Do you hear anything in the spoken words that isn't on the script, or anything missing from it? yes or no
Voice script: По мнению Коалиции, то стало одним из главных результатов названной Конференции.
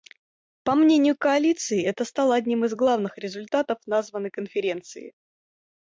yes